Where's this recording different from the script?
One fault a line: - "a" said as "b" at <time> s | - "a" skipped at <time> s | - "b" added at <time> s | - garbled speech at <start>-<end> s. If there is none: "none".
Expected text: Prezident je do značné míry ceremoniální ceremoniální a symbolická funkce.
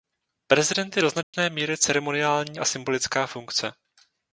- "ceremoniální" skipped at 2.6 s